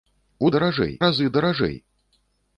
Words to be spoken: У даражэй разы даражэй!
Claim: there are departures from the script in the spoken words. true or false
false